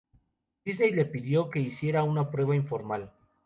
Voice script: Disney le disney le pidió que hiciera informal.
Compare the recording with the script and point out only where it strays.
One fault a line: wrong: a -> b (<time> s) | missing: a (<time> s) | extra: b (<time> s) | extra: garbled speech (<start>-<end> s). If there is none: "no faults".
missing: disney le (1.1 s)
extra: una prueba (2.0 s)